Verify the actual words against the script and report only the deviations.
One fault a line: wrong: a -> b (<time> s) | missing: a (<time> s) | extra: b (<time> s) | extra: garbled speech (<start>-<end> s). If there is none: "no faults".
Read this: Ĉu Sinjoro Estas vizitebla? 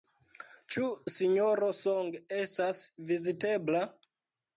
extra: Song (1.8 s)